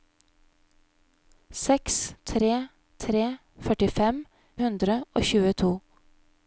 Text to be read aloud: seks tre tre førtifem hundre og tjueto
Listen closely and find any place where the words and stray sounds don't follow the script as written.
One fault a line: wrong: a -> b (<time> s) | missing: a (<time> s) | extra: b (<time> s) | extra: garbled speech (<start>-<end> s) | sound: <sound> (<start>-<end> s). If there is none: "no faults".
no faults